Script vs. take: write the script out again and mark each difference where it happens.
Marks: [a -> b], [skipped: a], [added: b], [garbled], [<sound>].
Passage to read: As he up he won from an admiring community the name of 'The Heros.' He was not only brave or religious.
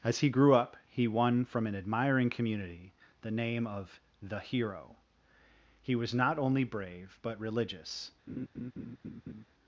As he [added: grew] up he won from an admiring community the name of 'The [Heros.' -> Hero] He was not only brave [or -> but] religious. [laugh]